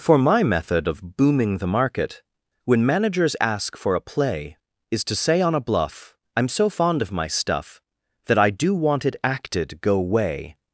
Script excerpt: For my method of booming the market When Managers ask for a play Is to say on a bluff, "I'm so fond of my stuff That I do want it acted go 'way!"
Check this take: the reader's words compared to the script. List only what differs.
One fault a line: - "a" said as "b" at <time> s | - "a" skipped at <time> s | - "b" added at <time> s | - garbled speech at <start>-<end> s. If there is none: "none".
none